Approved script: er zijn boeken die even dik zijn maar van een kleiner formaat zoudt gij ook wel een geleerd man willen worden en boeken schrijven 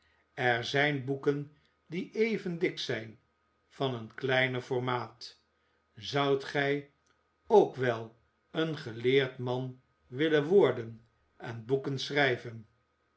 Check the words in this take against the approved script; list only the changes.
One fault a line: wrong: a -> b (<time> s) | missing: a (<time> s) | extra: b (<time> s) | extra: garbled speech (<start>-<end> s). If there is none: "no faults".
missing: maar (3.2 s)